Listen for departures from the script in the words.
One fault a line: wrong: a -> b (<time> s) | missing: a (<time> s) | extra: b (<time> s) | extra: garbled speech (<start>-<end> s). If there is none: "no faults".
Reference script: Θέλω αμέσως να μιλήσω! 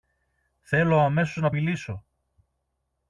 no faults